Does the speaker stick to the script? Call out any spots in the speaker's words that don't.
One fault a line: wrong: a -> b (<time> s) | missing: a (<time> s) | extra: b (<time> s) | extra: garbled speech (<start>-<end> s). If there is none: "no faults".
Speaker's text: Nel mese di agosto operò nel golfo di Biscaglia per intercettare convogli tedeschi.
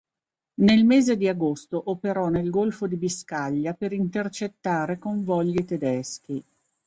no faults